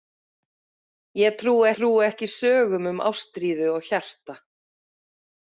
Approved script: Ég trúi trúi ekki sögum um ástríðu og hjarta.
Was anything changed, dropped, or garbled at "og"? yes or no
no